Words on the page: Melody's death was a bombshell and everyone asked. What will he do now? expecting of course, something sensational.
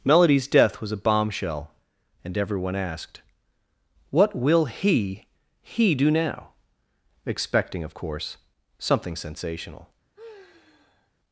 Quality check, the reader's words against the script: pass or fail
fail